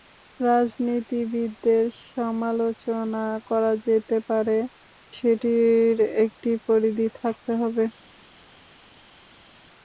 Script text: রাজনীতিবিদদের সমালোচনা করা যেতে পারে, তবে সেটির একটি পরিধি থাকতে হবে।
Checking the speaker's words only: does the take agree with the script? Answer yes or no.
no